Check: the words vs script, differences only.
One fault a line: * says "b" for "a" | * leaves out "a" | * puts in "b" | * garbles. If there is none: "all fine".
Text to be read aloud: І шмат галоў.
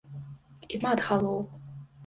all fine